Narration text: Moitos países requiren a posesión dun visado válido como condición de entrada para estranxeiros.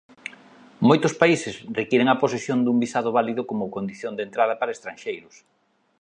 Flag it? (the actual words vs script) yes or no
no